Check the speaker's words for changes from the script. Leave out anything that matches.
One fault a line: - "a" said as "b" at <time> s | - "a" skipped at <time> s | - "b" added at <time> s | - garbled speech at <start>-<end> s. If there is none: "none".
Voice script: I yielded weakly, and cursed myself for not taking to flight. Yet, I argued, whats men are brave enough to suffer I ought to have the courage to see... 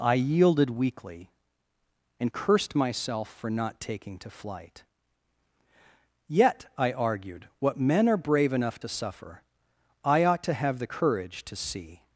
- "whats" said as "what" at 7.6 s